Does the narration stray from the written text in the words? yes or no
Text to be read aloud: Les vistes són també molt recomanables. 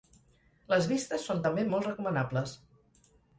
no